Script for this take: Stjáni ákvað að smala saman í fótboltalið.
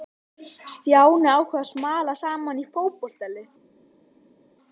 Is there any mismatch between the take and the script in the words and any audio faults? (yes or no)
no